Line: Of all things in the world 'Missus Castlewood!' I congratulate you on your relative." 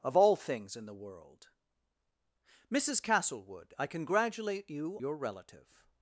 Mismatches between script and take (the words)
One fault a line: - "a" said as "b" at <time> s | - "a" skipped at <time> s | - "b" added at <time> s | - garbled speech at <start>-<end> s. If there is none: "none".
- "on" skipped at 5.0 s